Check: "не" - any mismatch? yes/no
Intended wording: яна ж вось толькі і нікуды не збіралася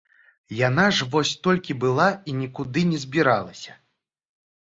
no